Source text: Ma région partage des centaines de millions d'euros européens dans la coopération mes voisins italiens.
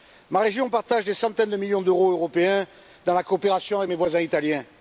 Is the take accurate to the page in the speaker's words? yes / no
no